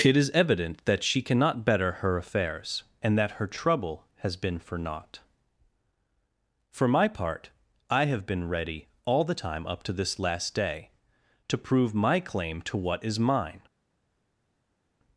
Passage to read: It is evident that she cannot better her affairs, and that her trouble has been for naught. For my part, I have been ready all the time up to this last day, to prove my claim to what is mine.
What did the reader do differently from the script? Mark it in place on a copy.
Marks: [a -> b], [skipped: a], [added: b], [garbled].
It is evident that she cannot better her affairs, and that her trouble has been for naught. For my part, I have been ready all the time up to this last day, to prove my claim to what is mine.